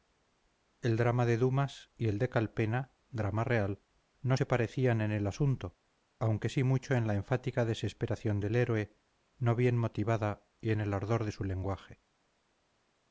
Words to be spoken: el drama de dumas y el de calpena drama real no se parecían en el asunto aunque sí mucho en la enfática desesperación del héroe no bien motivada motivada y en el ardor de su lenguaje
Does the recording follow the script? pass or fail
fail